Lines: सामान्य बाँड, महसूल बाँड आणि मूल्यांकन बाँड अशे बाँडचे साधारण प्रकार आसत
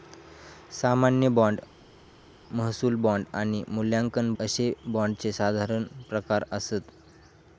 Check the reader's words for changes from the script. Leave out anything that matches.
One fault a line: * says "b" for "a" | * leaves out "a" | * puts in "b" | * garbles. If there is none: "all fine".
* leaves out "बाँड"